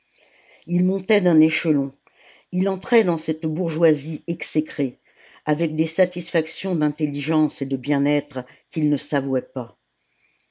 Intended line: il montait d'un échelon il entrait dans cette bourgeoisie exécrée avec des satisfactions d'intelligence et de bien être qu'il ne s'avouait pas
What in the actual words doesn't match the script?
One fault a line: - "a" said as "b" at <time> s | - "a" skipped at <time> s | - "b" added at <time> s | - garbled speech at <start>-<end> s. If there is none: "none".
none